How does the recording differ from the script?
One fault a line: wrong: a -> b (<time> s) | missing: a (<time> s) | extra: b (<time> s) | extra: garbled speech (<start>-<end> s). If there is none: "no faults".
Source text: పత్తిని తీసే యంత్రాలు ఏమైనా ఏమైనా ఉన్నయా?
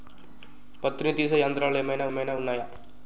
no faults